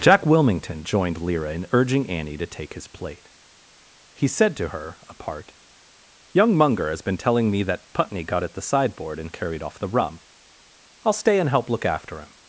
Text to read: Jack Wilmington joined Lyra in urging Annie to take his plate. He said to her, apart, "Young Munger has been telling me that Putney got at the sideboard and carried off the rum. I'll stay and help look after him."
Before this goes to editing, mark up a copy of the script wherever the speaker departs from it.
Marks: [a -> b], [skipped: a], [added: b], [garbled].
Jack Wilmington joined Lyra in urging Annie to take his plate. He said to her, apart, "Young Munger has been telling me that Putney got at the sideboard and carried off the rum. I'll stay and help look after him."